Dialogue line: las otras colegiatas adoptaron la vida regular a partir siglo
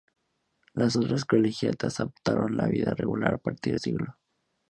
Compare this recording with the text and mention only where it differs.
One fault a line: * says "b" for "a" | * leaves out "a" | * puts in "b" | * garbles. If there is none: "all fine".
all fine